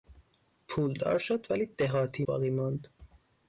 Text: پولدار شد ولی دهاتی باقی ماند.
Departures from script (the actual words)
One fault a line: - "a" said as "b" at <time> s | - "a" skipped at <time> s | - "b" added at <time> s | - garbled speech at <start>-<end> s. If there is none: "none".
none